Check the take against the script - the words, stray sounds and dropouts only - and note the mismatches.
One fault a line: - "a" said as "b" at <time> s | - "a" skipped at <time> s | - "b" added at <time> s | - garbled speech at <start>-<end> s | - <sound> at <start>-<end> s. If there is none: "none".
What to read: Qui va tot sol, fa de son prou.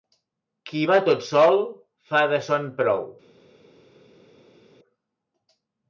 none